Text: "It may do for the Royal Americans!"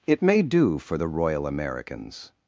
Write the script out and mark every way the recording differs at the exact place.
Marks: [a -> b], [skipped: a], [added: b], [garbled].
"It may do for the Royal Americans!"